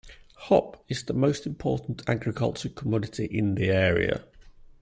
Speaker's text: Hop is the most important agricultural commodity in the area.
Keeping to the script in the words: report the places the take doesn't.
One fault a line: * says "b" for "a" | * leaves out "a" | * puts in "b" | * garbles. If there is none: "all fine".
all fine